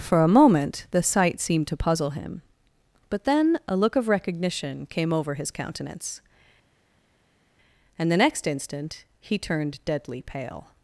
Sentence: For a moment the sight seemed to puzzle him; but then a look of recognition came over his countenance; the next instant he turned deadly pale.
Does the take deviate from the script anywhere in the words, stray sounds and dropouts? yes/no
yes